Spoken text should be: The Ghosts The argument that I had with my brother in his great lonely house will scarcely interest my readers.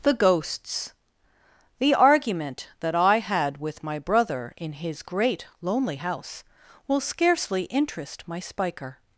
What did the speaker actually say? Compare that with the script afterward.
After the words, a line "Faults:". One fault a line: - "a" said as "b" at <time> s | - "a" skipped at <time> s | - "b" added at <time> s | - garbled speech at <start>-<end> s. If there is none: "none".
The Ghosts The argument that I had with my brother in his great lonely house will scarcely interest my spiker.
Faults:
- "readers" said as "spiker" at 8.4 s